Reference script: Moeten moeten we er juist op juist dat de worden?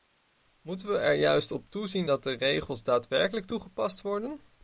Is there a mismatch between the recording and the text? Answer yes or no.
yes